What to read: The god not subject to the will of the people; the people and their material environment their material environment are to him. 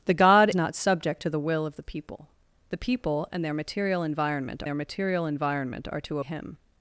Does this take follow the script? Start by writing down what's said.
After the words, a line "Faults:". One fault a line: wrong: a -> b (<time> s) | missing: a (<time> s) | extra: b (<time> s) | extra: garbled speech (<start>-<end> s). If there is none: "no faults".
The god not subject to the will of the people; the people and their material environment their material environment are to him.
Faults:
no faults